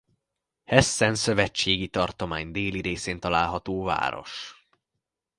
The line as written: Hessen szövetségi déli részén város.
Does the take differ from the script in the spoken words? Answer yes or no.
yes